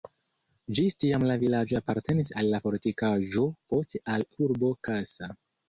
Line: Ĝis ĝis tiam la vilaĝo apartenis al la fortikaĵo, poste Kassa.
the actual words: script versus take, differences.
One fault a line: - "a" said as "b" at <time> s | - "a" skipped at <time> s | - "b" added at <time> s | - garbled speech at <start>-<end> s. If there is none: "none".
- "ĝis" skipped at 0.9 s
- "al urbo" added at 4.2 s